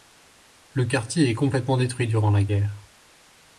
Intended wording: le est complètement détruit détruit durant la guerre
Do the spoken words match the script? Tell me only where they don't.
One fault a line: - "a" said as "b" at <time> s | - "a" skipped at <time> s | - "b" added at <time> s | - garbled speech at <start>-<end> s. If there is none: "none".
- "quartier" added at 0.8 s
- "détruit" skipped at 2.1 s